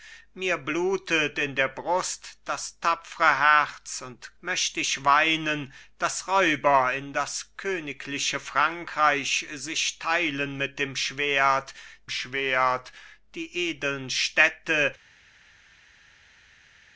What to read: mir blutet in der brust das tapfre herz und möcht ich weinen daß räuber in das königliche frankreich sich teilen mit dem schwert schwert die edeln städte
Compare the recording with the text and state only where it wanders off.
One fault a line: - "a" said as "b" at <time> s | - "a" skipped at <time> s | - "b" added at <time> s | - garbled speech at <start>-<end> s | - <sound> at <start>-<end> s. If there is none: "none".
none